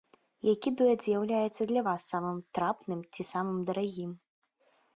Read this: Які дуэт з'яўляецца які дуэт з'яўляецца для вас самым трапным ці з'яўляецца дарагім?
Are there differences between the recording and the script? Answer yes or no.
yes